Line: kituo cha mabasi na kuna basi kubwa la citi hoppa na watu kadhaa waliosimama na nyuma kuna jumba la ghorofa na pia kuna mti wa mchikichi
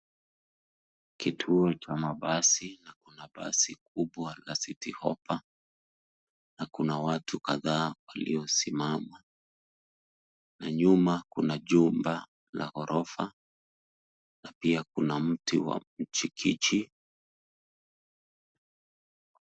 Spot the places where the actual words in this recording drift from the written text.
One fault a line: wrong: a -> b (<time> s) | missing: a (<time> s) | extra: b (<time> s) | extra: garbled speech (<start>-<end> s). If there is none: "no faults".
extra: kuna (6.7 s)